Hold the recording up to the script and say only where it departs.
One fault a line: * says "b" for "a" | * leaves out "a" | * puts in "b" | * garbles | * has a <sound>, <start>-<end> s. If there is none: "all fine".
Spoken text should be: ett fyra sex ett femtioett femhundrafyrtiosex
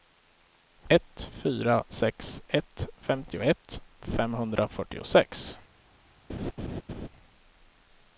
* has a laugh, 6.3-7.1 s